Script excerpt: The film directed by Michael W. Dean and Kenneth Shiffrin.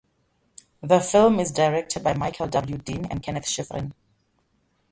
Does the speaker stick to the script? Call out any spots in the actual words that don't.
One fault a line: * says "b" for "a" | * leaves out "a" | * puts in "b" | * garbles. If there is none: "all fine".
* puts in "is"